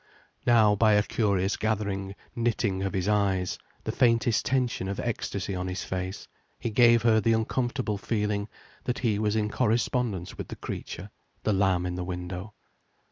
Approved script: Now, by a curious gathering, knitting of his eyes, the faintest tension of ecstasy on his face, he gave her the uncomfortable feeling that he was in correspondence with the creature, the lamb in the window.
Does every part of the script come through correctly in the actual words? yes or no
yes